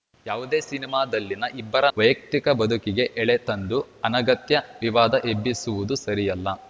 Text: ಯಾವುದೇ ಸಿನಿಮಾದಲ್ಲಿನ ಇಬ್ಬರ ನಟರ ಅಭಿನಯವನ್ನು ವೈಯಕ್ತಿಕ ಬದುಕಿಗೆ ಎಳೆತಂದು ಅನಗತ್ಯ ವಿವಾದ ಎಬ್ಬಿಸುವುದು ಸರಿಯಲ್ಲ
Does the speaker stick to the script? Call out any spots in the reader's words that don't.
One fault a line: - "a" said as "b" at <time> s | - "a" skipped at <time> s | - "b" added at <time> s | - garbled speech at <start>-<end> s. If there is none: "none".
- "ನಟರ ಅಭಿನಯವನ್ನು" skipped at 1.9 s